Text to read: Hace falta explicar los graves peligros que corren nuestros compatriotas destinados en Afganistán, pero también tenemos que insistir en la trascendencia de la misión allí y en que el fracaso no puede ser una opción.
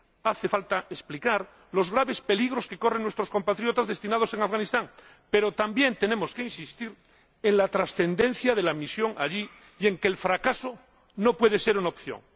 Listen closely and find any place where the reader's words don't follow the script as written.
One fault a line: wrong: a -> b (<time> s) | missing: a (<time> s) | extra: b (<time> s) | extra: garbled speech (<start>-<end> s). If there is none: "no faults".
no faults